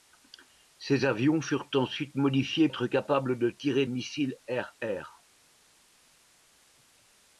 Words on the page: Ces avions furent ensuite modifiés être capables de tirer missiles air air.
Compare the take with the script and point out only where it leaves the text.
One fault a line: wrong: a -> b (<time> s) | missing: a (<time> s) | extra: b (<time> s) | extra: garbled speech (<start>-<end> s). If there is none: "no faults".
no faults